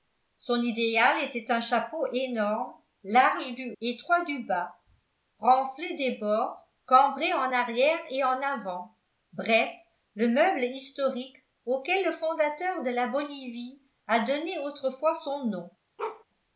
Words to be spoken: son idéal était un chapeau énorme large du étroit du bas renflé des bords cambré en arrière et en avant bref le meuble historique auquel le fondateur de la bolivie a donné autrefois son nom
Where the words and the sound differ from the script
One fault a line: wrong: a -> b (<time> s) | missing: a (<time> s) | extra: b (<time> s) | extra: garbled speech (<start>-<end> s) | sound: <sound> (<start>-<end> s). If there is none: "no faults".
sound: bark (16.0-16.2 s)